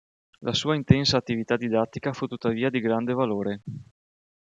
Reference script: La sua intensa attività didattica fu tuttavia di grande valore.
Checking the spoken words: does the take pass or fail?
pass